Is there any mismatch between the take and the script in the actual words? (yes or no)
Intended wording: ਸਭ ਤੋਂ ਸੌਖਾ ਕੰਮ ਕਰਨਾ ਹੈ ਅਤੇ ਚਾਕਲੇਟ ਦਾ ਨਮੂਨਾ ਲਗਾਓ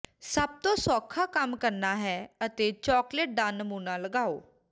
no